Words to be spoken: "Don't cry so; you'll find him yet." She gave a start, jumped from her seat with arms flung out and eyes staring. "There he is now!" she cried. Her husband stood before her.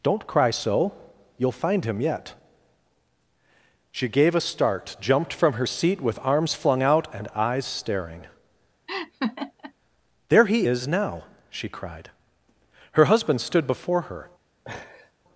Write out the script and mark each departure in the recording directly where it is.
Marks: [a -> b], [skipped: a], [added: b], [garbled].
"Don't cry so; you'll find him yet." She gave a start, jumped from her seat with arms flung out and eyes staring. "There he is now!" she cried. Her husband stood before her.